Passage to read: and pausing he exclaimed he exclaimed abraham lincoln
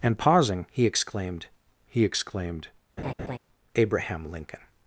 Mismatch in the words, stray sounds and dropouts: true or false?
true